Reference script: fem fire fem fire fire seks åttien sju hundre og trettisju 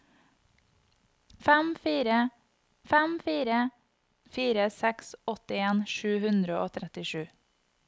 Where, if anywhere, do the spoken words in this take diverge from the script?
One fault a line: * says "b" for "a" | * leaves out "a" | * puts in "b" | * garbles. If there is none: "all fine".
all fine